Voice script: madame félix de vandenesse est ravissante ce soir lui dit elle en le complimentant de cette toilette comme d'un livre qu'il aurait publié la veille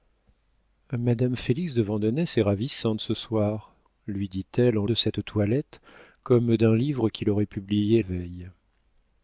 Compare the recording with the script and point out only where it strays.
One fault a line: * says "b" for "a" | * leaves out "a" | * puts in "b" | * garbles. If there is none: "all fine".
* leaves out "le complimentant"
* leaves out "la"